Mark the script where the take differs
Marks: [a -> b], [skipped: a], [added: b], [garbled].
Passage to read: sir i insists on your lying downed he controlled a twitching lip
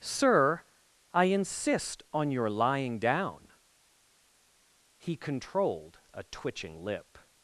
sir i [insists -> insist] on your lying [downed -> down] he controlled a twitching lip